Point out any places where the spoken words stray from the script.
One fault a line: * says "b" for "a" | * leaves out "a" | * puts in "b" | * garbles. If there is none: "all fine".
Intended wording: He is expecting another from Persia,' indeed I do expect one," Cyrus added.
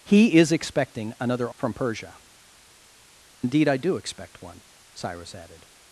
all fine